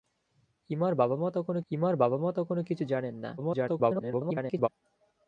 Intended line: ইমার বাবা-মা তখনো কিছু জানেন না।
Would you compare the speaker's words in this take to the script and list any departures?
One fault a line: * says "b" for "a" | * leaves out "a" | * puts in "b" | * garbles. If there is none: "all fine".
* puts in "ইমার বাবা-মা তখনো"
* garbles